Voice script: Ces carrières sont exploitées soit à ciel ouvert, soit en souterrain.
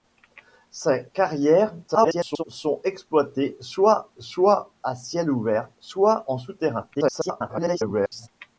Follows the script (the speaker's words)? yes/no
no